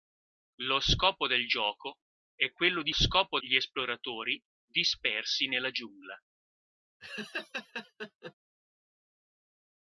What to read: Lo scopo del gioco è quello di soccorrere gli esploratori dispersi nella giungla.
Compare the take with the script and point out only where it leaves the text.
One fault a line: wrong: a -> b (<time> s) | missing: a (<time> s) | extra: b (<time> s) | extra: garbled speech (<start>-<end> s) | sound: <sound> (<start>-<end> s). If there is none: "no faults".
wrong: soccorrere -> scopo (2.9 s)
sound: laugh (7.0-8.3 s)